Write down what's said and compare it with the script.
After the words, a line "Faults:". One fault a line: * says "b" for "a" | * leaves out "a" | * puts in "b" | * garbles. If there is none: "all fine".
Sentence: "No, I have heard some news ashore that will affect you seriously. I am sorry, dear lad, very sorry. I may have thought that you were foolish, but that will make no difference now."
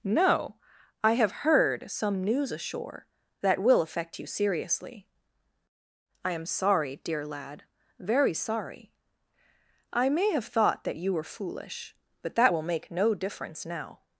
"No, I have heard some news ashore that will affect you seriously. I am sorry, dear lad, very sorry. I may have thought that you were foolish, but that will make no difference now."
Faults:
all fine